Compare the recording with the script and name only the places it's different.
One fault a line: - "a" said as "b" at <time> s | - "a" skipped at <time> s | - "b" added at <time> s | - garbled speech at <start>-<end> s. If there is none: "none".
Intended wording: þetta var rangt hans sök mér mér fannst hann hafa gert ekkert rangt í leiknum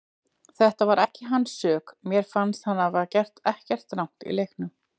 - "rangt" said as "ekki" at 1.0 s
- "mér" skipped at 2.3 s